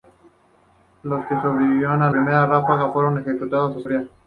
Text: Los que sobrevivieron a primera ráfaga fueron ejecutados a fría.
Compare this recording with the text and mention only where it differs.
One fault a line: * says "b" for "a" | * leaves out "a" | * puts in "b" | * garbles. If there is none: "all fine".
all fine